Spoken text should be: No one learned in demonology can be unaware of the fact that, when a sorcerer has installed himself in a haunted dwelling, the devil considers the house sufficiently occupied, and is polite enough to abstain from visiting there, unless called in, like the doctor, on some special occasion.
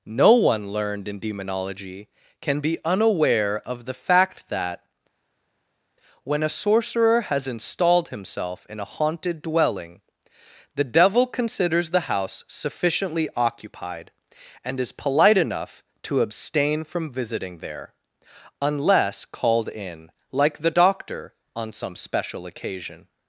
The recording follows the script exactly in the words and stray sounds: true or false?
true